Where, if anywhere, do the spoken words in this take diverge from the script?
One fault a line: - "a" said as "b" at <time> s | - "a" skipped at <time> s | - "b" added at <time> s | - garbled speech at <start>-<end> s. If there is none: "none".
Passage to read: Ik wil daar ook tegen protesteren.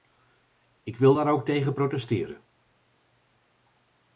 none